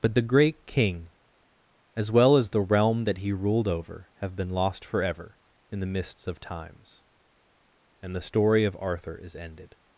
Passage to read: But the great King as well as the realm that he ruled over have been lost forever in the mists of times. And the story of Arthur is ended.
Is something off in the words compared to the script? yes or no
no